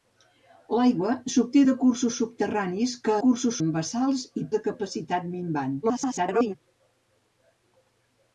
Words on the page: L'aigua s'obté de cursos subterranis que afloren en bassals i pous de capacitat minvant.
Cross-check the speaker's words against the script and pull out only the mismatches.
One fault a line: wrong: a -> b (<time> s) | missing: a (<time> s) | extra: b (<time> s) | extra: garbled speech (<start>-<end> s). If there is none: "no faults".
wrong: afloren -> cursos (3.2 s)
missing: pous (4.4 s)
extra: garbled speech (5.8-6.5 s)